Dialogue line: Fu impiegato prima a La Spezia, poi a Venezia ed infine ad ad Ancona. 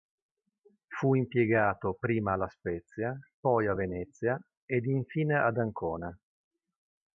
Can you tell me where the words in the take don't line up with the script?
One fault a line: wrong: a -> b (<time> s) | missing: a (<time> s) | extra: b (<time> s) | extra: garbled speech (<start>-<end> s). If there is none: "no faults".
missing: ad (5.6 s)